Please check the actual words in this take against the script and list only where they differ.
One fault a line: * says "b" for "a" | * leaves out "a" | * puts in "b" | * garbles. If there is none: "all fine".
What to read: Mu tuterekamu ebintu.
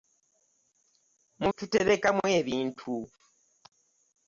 all fine